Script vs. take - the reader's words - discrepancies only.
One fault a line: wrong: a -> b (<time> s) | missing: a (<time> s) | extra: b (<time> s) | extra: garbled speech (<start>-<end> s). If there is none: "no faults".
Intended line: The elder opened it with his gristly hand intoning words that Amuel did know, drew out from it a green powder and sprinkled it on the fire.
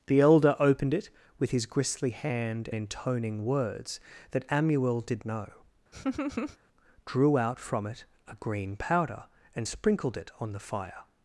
no faults